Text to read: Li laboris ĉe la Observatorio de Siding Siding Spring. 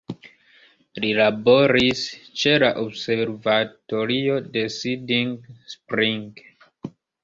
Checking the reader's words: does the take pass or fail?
fail